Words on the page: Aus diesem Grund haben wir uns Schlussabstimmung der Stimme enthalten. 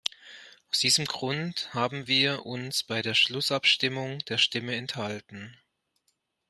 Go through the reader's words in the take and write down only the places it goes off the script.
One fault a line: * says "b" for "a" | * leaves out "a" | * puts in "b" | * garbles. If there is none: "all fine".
* puts in "bei der"